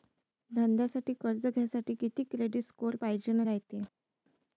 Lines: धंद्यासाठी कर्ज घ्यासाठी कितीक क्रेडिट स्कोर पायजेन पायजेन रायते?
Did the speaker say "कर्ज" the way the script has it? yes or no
yes